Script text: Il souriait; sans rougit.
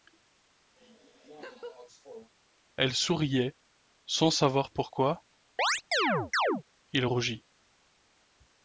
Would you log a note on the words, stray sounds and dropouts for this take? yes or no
yes